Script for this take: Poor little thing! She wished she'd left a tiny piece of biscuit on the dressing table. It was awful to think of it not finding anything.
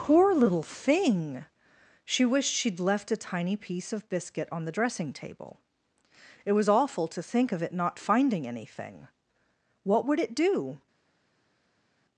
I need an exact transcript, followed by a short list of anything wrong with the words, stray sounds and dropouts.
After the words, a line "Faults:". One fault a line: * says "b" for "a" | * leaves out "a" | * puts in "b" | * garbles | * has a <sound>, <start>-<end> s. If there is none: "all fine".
Poor little thing! She wished she'd left a tiny piece of biscuit on the dressing table. It was awful to think of it not finding anything. What would it do
Faults:
* puts in "What would it do"